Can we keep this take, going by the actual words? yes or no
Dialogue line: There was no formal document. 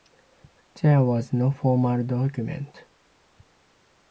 yes